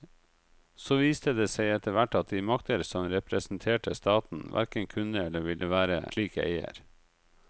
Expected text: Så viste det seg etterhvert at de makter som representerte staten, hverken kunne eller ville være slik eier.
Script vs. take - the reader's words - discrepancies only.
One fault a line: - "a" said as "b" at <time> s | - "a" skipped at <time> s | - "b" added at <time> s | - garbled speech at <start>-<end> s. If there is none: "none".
none